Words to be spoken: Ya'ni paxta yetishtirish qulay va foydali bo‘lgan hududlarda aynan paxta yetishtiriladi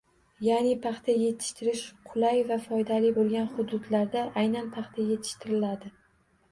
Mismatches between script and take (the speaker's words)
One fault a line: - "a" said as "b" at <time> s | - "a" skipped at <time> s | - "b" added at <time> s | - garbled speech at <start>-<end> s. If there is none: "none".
none